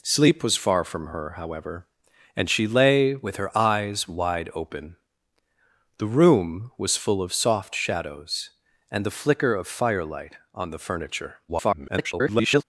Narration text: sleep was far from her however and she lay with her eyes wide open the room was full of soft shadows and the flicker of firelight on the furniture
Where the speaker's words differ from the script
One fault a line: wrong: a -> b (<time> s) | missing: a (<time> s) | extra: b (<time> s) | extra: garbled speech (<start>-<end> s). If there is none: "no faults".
extra: garbled speech (11.5-12.6 s)